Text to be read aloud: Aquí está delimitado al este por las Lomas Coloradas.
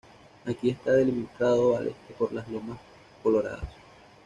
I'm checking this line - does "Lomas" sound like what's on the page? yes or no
yes